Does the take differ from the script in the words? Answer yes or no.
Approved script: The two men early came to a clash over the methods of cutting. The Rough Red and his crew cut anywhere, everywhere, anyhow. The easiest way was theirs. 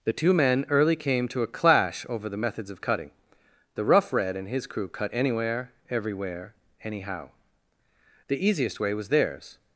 no